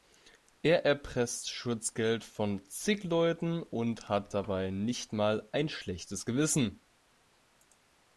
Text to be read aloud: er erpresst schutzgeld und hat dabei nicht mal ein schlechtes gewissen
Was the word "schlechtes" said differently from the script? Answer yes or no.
no